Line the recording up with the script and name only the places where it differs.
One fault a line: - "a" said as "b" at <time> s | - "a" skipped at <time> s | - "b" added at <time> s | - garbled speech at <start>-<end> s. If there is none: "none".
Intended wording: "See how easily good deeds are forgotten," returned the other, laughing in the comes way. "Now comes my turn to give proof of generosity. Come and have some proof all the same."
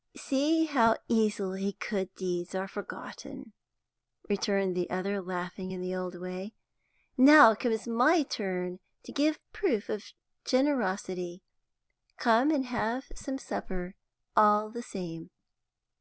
- "comes" said as "old" at 5.9 s
- "proof" said as "supper" at 13.4 s